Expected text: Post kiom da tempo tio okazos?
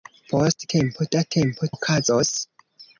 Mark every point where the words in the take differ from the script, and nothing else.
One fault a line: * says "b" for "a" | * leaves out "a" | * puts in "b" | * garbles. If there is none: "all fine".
* says "tempo" for "kiom"
* leaves out "tio"